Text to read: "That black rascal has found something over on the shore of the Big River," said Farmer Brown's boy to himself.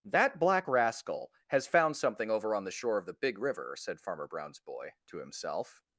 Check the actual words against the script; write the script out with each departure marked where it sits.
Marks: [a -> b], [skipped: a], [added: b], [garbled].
"That black rascal has found something over on the shore of the Big River," said Farmer Brown's boy to himself.